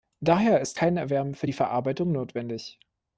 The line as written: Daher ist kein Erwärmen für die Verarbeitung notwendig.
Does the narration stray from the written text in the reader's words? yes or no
no